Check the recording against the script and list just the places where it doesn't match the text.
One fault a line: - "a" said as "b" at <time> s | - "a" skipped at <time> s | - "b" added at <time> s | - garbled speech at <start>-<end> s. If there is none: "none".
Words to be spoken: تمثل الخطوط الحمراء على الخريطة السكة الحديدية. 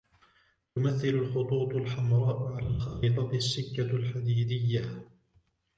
none